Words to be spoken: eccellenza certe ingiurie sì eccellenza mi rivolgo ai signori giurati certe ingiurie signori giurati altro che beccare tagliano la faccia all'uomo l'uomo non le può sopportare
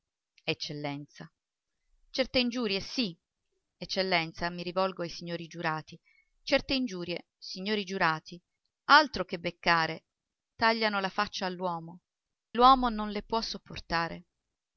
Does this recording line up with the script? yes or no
yes